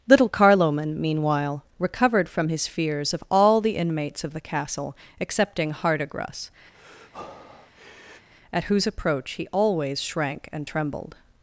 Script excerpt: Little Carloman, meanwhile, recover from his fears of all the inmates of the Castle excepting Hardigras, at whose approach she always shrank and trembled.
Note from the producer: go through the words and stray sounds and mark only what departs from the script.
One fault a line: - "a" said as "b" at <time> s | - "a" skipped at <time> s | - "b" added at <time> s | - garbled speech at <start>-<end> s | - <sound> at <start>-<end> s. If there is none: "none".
- "recover" said as "recovered" at 1.8 s
- breath at 6.7-8.3 s
- "she" said as "he" at 9.3 s